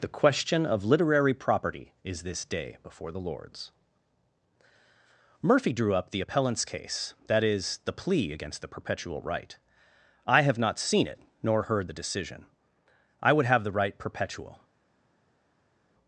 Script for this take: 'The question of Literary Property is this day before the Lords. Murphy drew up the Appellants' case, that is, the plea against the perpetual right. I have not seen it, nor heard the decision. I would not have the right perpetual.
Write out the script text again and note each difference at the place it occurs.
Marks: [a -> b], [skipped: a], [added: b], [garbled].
'The question of Literary Property is this day before the Lords. Murphy drew up the Appellants' case, that is, the plea against the perpetual right. I have not seen it, nor heard the decision. I would [skipped: not] have the right perpetual.